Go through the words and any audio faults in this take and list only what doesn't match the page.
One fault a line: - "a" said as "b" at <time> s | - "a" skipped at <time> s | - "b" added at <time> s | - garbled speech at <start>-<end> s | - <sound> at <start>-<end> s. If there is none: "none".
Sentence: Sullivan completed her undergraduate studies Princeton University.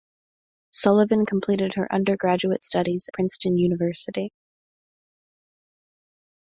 none